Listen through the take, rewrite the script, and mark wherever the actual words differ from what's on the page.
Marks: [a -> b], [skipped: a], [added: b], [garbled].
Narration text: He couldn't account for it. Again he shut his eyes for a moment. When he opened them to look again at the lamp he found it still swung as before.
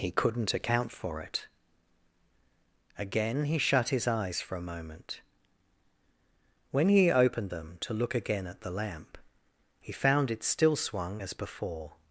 He couldn't account for it. Again he shut his eyes for a moment. When he opened them to look again at the lamp he found it still swung as before.